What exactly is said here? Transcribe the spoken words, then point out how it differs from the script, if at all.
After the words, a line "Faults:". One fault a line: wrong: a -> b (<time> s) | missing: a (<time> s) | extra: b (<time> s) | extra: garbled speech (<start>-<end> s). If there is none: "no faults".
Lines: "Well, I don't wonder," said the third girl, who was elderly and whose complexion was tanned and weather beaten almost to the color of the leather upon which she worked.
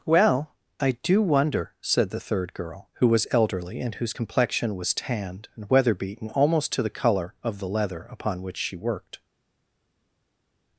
"Well, I do wonder," said the third girl, who was elderly and whose complexion was tanned and weather beaten almost to the color of the leather upon which she worked.
Faults:
wrong: don't -> do (1.0 s)